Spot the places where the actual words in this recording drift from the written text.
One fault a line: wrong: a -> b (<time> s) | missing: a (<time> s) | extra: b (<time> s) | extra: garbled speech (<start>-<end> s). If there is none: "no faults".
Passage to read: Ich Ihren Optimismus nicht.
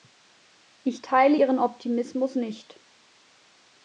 extra: teile (1.0 s)